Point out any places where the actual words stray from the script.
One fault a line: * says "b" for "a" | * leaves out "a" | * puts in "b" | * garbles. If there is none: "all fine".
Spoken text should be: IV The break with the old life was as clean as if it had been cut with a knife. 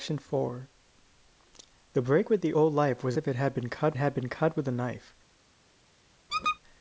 * says "if it had been cut" for "as clean as if it"